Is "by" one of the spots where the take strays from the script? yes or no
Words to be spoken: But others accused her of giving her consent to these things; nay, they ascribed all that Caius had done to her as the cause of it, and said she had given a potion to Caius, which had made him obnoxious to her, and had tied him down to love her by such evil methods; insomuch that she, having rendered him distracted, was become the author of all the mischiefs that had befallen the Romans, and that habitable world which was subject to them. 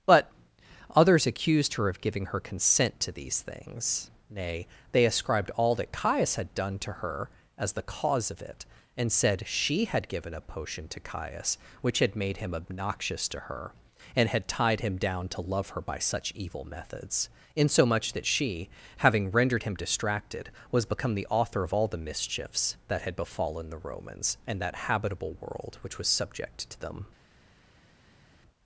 no